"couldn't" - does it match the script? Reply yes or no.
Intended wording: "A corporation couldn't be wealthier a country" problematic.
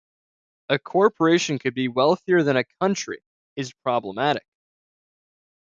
no